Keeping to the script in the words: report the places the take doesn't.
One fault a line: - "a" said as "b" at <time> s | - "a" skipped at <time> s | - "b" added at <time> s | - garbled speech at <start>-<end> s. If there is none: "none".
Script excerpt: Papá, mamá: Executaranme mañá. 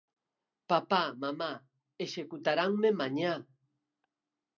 none